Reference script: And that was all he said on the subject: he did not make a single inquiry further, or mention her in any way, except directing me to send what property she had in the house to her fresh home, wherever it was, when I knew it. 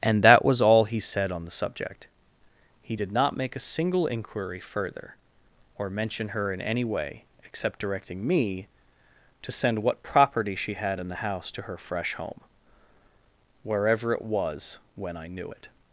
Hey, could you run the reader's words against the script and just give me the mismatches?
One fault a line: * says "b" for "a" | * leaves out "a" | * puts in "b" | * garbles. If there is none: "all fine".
all fine